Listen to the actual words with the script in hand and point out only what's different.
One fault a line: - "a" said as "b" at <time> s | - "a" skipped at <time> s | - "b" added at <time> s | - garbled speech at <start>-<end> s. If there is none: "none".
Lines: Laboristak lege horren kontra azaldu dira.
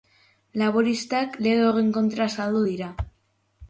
none